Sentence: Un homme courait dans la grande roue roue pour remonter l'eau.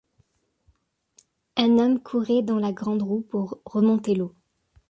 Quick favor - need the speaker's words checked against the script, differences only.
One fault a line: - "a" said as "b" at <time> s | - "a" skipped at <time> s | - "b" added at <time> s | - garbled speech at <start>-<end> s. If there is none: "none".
- "roue" skipped at 3.2 s